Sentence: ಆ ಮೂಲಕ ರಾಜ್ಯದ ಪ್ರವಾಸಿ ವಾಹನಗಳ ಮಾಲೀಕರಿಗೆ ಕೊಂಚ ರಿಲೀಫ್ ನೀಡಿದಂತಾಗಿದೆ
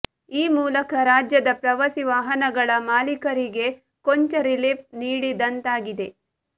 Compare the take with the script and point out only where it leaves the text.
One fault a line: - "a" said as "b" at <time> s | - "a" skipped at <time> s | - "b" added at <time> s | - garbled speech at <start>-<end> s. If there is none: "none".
- "ಆ" said as "ಈ" at 0.3 s